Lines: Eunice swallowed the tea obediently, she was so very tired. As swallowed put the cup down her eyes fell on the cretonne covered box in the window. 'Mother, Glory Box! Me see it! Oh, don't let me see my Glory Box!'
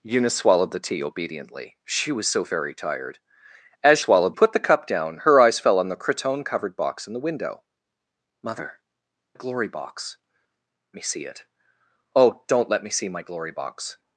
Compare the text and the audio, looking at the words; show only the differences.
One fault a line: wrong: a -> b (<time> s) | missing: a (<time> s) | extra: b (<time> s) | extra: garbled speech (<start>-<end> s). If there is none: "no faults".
no faults